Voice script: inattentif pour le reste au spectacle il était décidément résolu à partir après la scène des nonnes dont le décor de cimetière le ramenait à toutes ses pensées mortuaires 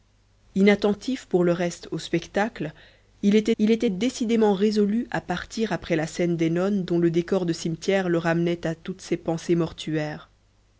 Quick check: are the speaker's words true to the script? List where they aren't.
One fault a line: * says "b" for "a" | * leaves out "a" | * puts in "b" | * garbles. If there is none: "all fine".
* puts in "il était"